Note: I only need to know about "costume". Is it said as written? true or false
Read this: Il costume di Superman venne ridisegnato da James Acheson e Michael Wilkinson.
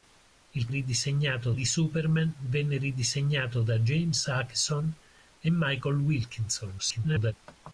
false